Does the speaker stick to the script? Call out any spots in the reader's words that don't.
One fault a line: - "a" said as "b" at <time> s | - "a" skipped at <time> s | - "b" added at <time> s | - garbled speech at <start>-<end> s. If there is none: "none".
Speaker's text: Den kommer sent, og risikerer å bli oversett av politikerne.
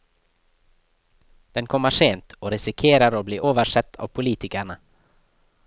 none